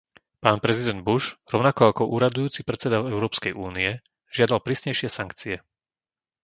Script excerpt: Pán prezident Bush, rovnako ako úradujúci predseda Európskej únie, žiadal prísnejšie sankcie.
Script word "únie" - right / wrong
right